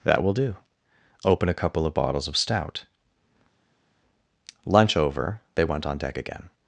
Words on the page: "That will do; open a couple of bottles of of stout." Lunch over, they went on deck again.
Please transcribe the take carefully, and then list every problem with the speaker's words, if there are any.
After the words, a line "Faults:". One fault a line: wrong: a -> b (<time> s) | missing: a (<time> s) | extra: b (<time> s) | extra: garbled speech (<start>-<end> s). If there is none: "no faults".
"That will do; open a couple of bottles of stout." Lunch over, they went on deck again.
Faults:
missing: of (2.4 s)